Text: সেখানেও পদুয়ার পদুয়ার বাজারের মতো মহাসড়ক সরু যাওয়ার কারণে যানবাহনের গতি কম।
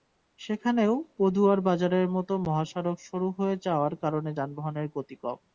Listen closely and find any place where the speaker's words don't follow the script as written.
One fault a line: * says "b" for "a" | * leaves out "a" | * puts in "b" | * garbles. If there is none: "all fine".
* leaves out "পদুয়ার"
* puts in "হয়ে"